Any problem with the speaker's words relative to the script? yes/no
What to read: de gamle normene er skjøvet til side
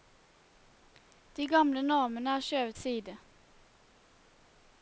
yes